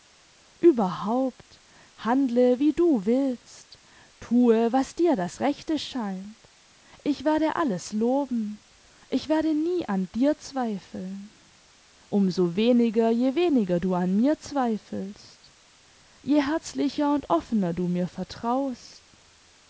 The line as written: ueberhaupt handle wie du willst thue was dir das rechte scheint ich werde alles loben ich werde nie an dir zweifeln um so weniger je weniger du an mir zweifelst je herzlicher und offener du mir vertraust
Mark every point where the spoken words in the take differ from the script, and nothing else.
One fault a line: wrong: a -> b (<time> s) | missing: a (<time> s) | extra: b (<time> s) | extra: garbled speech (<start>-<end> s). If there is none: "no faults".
no faults